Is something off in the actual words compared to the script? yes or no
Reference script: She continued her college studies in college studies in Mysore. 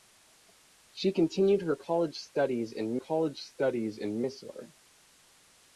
no